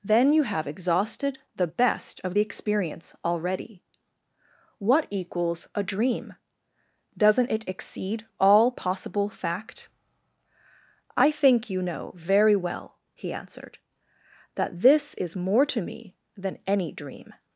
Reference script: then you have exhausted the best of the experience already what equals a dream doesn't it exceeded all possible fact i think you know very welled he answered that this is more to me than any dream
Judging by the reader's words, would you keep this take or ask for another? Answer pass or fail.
fail